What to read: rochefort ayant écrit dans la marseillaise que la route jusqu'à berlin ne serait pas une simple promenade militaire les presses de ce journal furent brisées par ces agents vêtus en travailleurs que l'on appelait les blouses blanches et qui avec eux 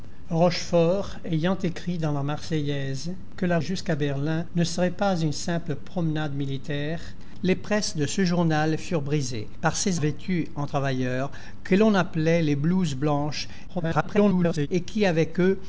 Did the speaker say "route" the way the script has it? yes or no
no